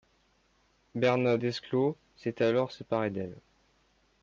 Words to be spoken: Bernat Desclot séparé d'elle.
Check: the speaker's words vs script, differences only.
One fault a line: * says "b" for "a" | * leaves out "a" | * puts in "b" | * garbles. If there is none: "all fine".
* puts in "s'est alors"